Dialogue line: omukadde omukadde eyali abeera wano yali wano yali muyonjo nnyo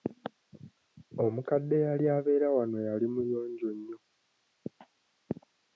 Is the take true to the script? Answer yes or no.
no